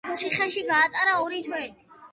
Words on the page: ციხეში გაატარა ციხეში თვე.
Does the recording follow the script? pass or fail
fail